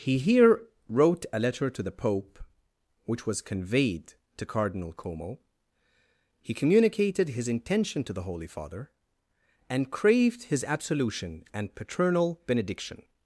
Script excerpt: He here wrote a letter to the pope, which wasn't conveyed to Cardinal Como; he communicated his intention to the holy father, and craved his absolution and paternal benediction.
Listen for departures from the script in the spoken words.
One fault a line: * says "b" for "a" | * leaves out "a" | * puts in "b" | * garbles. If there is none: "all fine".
* says "was" for "wasn't"